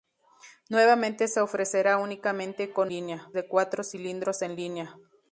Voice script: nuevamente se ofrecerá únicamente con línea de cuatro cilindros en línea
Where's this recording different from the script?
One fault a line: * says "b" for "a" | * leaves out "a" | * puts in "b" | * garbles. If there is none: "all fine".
all fine